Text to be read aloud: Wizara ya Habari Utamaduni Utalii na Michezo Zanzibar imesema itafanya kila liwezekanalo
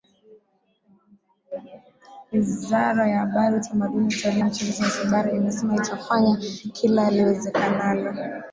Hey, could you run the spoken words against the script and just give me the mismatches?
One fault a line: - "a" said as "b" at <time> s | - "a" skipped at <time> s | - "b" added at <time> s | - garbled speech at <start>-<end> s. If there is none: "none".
- "na" skipped at 4.4 s